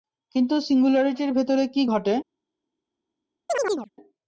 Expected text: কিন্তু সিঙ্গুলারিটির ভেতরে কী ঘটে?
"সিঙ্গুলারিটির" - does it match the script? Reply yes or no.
yes